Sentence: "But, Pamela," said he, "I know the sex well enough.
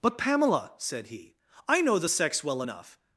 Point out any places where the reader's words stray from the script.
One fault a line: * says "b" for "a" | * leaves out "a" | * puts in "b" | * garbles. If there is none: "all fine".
all fine